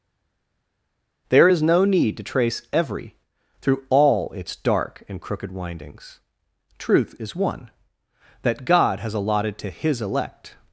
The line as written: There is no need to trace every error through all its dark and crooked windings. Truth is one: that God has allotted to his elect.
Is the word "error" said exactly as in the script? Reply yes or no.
no